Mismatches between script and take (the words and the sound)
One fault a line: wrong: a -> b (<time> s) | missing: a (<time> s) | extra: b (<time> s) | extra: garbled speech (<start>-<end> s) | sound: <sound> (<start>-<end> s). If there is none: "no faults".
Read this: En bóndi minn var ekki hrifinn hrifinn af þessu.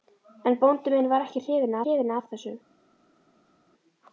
no faults